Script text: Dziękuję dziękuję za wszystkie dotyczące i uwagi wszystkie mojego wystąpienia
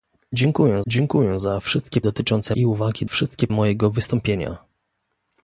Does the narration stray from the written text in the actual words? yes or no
no